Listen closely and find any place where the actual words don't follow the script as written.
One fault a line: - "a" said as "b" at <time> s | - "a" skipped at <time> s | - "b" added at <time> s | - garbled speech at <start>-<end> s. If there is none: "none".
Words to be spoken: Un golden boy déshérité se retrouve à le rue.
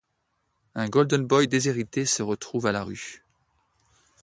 - "le" said as "la" at 2.7 s